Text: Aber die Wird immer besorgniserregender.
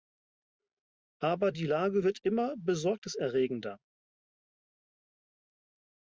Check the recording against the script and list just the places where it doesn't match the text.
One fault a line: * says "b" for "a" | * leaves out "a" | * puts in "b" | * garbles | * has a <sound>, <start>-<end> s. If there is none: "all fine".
* puts in "Lage"